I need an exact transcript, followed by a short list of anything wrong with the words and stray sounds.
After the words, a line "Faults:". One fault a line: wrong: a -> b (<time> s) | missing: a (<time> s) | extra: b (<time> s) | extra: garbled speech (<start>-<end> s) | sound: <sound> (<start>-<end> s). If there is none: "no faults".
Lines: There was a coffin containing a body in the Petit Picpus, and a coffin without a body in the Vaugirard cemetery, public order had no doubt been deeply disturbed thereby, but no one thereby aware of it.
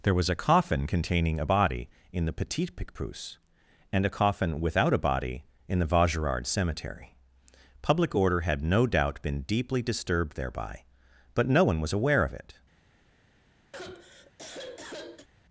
There was a coffin containing a body in the Petit Picpus, and a coffin without a body in the Vaugirard cemetery, public order had no doubt been deeply disturbed thereby, but no one was aware of it.
Faults:
wrong: thereby -> was (11.8 s)
sound: sigh (13.7-15.3 s)